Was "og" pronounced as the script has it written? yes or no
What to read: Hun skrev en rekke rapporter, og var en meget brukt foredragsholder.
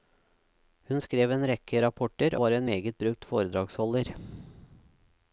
no